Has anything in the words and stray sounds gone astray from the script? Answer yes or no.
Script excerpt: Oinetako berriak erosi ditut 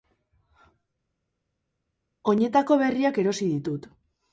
no